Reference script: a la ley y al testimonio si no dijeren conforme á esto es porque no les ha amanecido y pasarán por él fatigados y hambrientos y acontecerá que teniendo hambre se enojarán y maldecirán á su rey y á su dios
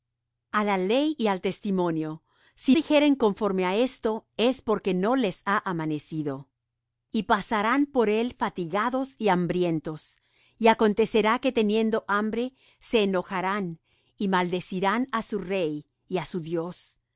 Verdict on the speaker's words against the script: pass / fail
fail